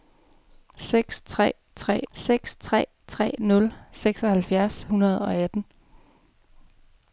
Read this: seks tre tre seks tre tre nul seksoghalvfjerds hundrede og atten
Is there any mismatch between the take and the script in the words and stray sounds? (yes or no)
no